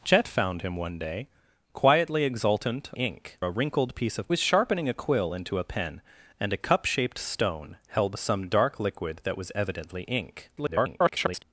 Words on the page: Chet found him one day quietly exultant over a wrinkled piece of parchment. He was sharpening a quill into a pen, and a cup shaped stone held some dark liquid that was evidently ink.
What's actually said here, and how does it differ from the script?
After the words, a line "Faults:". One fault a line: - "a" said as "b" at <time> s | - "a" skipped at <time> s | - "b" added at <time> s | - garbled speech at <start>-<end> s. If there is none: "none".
Chet found him one day quietly exultant ink a wrinkled piece of was sharpening a quill into a pen, and a cup shaped stone held some dark liquid that was evidently ink. [garbled]
Faults:
- "over" said as "ink" at 2.9 s
- "parchment He" skipped at 4.3 s
- garbled speech at 10.6-11.4 s